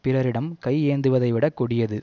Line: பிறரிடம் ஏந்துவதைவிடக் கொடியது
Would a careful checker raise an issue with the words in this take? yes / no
yes